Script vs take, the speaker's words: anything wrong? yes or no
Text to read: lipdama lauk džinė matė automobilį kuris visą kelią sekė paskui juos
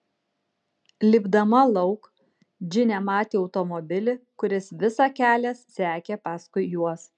no